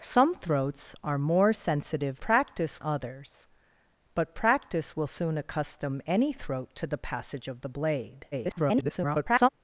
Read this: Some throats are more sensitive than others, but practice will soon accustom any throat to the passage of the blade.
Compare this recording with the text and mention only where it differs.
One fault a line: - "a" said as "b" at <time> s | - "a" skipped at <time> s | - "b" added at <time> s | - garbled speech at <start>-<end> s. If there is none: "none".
- "than" said as "practice" at 2.2 s
- garbled speech at 8.3-9.5 s